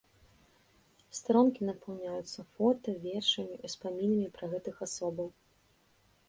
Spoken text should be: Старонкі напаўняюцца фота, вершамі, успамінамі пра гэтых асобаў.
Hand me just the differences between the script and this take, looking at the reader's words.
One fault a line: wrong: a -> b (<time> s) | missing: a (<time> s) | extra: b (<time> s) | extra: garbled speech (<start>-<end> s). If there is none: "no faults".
no faults